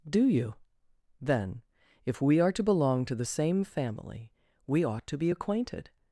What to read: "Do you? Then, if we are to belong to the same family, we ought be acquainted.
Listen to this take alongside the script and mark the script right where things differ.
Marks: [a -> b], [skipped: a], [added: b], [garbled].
"Do you? Then, if we are to belong to the same family, we ought [added: to] be acquainted.